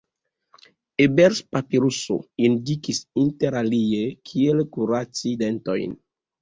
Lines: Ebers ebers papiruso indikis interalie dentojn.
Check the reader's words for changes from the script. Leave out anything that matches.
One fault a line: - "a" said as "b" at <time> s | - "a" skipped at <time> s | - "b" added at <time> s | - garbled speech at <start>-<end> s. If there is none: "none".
- "ebers" skipped at 1.4 s
- "kiel kuraci" added at 4.3 s